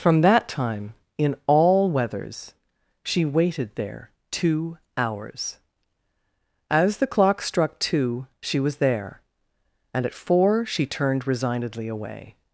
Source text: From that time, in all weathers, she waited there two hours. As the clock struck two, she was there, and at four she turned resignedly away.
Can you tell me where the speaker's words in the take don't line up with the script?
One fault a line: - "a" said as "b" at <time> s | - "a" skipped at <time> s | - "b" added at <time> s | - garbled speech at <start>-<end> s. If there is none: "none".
none